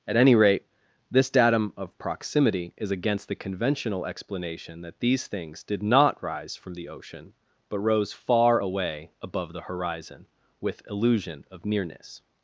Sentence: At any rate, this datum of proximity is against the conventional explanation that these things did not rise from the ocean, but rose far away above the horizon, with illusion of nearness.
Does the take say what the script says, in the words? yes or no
yes